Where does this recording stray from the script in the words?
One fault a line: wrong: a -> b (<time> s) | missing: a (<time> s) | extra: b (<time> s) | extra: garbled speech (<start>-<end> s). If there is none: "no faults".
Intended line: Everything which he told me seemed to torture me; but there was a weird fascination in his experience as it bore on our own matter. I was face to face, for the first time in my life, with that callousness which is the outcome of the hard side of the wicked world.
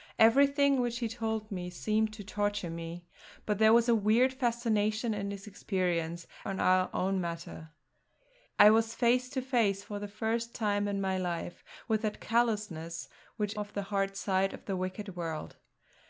missing: as it bore (6.2 s)
missing: is the outcome (13.5 s)